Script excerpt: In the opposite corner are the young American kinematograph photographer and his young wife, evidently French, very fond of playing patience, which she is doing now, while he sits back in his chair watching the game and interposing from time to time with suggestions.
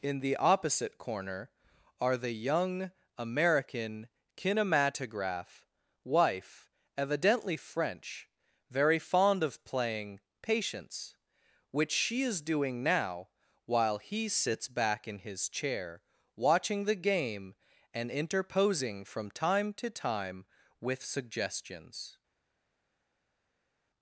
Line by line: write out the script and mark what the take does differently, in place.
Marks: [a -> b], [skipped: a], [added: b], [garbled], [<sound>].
In the opposite corner are the young American kinematograph [skipped: photographer and his young] wife, evidently French, very fond of playing patience, which she is doing now, while he sits back in his chair watching the game and interposing from time to time with suggestions.